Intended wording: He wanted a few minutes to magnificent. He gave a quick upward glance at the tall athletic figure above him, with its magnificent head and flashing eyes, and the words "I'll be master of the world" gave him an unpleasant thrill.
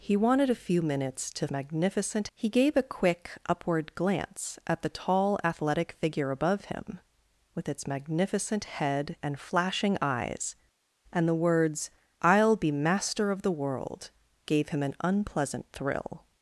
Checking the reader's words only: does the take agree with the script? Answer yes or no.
yes